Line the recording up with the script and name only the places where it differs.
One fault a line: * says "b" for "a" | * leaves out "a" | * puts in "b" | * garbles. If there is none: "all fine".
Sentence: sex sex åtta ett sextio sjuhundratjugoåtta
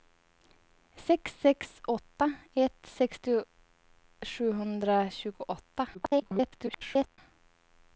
* garbles